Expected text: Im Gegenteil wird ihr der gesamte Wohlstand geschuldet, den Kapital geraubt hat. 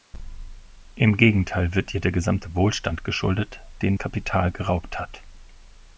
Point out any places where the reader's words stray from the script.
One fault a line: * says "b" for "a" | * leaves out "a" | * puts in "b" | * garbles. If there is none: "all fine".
all fine